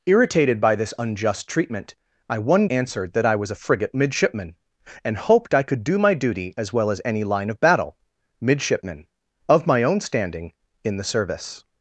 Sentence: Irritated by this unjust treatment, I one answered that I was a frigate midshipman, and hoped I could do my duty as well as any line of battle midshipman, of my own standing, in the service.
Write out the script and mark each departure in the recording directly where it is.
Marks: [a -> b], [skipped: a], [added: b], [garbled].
Irritated by this unjust treatment, I one answered that I was a frigate midshipman, and hoped I could do my duty as well as any line of battle midshipman, of my own standing, in the service.